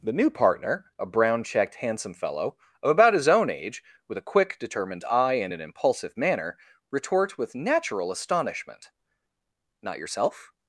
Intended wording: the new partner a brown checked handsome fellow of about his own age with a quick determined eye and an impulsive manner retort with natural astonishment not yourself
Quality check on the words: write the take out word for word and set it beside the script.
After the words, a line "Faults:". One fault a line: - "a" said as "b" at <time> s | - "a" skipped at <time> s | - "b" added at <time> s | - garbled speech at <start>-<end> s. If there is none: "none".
the new partner a brown checked handsome fellow of about his own age with a quick determined eye and an impulsive manner retort with natural astonishment not yourself
Faults:
none